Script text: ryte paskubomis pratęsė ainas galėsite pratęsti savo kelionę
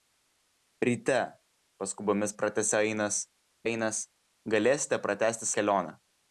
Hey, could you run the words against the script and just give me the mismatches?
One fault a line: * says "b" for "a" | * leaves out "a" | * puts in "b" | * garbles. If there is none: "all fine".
* puts in "ainas"
* leaves out "savo"